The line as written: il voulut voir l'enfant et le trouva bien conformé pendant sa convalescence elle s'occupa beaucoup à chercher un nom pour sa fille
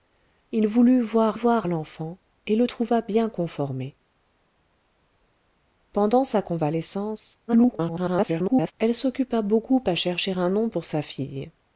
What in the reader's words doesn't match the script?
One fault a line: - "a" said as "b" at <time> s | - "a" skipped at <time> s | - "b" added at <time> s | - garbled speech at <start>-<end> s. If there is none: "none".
- "voir" added at 1.3 s
- garbled speech at 7.5-8.7 s